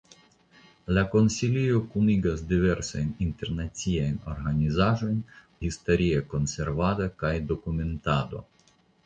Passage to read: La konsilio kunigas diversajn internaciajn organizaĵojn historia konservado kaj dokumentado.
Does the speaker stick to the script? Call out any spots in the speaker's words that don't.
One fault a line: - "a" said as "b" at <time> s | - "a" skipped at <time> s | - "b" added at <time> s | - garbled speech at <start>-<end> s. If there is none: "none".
none